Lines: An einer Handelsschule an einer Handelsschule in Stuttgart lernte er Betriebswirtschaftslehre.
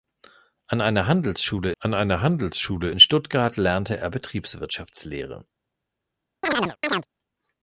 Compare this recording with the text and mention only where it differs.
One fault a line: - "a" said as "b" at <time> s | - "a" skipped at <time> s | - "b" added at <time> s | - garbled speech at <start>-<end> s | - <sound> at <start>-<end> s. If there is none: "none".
- chirp at 6.4-7.1 s